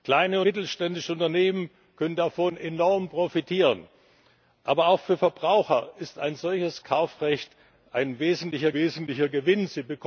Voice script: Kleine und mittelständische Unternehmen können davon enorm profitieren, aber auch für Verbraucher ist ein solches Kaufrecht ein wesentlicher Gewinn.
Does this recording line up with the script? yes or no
no